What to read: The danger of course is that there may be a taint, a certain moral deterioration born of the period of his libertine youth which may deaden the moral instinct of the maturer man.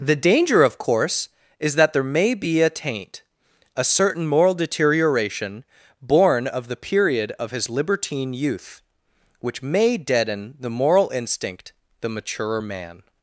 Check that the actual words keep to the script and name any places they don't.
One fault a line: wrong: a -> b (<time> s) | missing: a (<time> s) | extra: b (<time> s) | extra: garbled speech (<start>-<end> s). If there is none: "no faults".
missing: of (11.7 s)